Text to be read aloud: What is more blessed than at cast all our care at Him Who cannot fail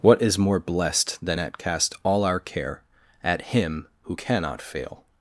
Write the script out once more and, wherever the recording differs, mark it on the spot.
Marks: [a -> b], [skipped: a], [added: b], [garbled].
What is more blessed than at cast all our care at Him Who cannot fail